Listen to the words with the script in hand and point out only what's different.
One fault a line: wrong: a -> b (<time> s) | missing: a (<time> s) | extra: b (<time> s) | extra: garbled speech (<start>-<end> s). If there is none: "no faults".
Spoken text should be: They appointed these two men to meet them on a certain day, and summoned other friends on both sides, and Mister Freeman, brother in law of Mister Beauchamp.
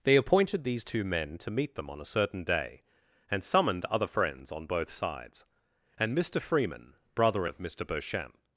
missing: in law (7.5 s)